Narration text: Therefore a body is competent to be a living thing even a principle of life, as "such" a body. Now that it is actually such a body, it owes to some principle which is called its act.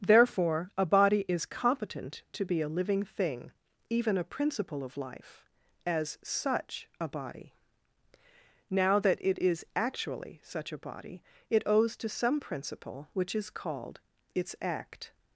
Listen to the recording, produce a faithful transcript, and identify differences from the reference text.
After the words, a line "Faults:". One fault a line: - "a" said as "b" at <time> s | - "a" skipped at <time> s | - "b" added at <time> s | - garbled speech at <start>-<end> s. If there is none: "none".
Therefore a body is competent to be a living thing even a principle of life, as "such" a body. Now that it is actually such a body, it owes to some principle which is called its act.
Faults:
none